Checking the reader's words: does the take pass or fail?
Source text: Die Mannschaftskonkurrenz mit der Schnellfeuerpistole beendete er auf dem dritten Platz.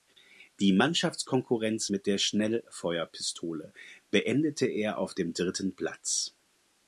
pass